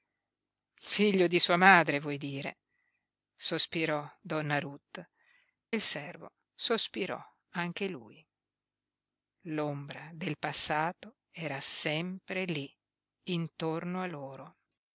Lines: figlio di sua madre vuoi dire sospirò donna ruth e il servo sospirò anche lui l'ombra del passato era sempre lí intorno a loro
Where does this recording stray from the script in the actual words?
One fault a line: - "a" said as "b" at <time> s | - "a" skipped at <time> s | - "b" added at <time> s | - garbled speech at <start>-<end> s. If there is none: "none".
- "e" skipped at 5.1 s